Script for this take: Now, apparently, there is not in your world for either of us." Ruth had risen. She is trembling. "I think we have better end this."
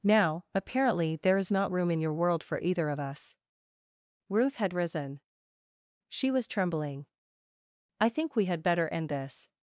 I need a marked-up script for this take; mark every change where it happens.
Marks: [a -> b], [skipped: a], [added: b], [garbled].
Now, apparently, there is not [added: room] in your world for either of us." Ruth had risen. She [is -> was] trembling. "I think we [have -> had] better end this."